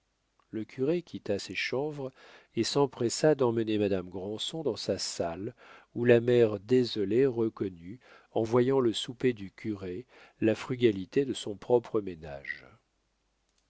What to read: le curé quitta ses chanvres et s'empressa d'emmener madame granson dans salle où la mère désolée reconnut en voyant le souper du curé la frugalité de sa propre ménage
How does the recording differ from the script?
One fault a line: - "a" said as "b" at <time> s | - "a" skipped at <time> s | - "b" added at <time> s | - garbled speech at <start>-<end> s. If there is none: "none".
- "sa" added at 4.8 s
- "sa" said as "son" at 11.3 s